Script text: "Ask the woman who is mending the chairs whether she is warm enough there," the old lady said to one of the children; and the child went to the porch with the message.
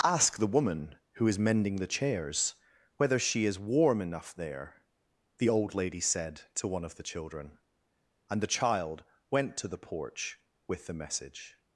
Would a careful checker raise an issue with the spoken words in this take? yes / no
no